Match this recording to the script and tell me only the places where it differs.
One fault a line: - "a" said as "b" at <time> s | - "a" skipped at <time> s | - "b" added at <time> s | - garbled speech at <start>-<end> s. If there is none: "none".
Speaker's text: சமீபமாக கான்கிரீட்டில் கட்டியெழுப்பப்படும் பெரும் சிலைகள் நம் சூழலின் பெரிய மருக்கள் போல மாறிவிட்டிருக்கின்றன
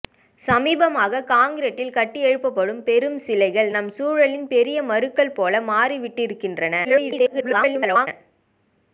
- garbled speech at 6.8-8.1 s